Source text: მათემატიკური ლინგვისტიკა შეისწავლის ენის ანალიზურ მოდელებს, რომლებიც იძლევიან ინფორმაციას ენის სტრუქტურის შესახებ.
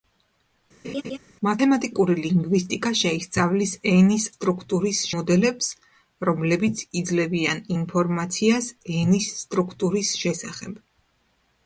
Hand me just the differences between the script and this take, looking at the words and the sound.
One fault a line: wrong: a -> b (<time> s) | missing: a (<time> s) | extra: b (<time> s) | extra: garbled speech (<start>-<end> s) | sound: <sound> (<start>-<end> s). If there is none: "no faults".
sound: laugh (0.8-1.2 s)
wrong: ანალიზურ -> სტრუქტურის (4.4 s)